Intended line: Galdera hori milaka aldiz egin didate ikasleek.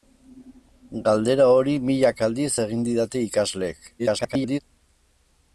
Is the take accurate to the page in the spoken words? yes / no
no